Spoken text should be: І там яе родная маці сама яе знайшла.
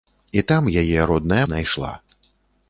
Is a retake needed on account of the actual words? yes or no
yes